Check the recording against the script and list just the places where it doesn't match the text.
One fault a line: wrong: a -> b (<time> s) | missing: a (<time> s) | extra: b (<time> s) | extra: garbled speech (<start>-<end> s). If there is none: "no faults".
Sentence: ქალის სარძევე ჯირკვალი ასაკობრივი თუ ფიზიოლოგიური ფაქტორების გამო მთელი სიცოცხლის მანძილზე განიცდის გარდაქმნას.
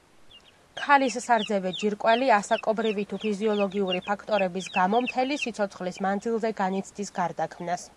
no faults